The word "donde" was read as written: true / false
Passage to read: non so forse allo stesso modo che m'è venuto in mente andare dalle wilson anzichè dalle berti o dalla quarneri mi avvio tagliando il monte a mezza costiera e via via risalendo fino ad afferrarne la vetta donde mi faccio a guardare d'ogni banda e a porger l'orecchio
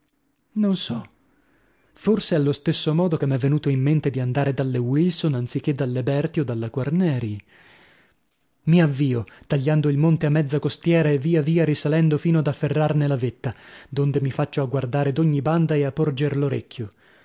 true